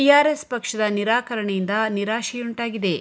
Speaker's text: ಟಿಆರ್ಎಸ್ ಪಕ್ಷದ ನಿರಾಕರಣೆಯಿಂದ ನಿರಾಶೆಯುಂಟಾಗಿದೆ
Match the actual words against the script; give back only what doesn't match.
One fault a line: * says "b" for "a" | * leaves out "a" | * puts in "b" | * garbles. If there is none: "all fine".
all fine